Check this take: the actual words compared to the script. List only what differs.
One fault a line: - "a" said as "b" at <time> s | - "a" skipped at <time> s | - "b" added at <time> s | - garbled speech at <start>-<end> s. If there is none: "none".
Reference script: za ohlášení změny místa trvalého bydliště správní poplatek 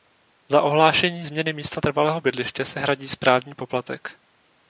- "se hradí" added at 2.6 s